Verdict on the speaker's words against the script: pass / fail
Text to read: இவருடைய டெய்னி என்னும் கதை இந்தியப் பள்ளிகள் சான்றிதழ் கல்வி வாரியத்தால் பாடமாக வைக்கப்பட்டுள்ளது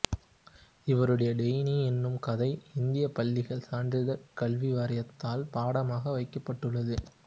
pass